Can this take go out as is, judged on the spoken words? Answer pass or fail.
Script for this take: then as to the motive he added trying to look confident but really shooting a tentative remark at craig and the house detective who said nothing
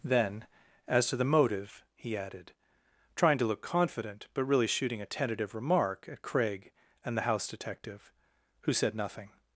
pass